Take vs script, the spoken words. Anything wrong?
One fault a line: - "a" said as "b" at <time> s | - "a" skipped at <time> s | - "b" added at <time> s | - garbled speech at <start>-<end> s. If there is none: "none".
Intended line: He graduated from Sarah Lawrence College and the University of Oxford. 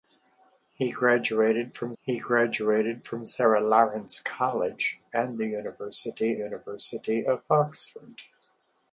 - "he graduated from" added at 2.0 s
- "University" added at 6.3 s